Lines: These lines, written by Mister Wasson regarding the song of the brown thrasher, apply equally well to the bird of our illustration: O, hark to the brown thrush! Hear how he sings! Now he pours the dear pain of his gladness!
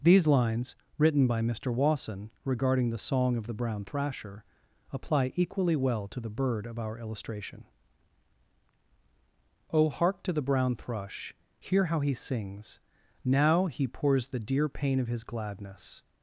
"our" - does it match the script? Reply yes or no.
yes